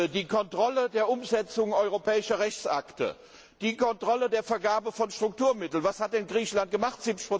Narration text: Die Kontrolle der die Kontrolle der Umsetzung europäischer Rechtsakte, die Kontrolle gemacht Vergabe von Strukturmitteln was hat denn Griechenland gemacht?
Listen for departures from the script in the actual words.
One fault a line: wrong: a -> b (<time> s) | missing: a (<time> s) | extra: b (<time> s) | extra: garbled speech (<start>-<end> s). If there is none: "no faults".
missing: die Kontrolle der (1.1 s)
wrong: gemacht -> der (4.3 s)